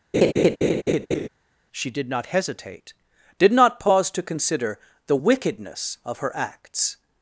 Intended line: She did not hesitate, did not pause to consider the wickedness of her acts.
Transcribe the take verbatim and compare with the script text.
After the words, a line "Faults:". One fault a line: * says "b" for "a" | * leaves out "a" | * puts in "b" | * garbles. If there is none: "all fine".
She did not hesitate, did not pause to consider the wickedness of her acts.
Faults:
all fine